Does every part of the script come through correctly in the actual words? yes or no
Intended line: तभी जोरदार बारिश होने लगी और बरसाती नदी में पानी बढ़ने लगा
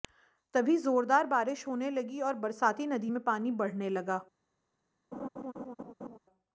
yes